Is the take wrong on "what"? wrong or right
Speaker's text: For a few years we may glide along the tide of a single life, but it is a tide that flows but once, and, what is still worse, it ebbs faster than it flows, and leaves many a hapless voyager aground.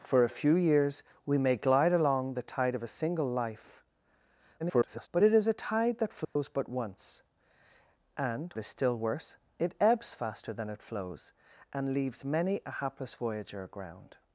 wrong